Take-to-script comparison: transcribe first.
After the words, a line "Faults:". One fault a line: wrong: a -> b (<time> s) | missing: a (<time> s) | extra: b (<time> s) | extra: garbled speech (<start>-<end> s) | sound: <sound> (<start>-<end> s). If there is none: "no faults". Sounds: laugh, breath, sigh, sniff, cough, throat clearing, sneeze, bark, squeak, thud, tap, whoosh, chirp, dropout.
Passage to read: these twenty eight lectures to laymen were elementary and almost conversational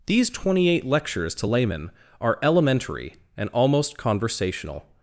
these twenty eight lectures to laymen are elementary and almost conversational
Faults:
wrong: were -> are (2.2 s)